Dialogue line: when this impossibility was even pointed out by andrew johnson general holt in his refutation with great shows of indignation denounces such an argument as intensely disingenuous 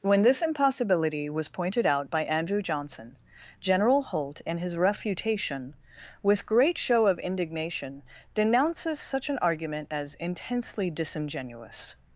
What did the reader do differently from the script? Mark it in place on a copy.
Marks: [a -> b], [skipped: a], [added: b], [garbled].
when this impossibility was [skipped: even] pointed out by andrew johnson general holt in his refutation with great [shows -> show] of indignation denounces such an argument as intensely disingenuous